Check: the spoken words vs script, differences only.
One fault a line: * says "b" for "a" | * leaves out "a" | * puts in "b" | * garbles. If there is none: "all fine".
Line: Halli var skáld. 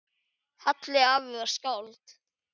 * puts in "afi"